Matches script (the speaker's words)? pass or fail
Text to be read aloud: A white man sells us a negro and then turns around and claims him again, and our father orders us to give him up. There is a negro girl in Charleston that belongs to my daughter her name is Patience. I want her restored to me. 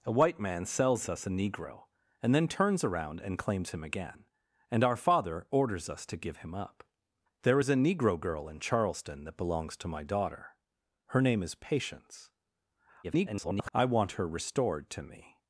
fail